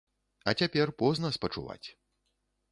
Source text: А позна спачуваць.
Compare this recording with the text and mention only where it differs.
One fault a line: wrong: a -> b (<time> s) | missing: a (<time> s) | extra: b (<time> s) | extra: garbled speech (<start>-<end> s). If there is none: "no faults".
extra: цяпер (0.6 s)